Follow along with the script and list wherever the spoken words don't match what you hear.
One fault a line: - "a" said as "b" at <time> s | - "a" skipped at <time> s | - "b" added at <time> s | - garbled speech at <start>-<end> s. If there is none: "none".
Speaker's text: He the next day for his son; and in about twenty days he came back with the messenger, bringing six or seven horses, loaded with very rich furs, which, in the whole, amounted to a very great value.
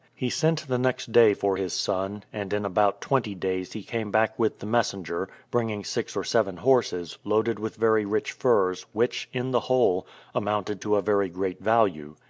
- "sent" added at 0.3 s